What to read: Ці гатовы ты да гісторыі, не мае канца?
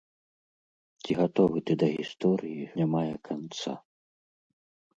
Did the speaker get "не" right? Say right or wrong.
right